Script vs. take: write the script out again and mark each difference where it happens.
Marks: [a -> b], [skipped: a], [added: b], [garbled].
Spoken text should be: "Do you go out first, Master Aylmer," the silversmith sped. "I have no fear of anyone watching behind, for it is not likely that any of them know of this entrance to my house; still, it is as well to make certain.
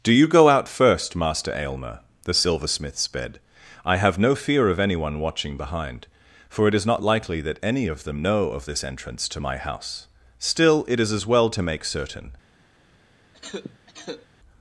"Do you go out first, Master Aylmer," the silversmith sped. "I have no fear of anyone watching behind, for it is not likely that any of them know of this entrance to my house; still, it is as well to make certain.